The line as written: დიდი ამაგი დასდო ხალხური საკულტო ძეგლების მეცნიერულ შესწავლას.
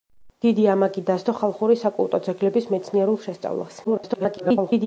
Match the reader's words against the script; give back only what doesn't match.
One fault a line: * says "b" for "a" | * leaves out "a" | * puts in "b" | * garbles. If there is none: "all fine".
* garbles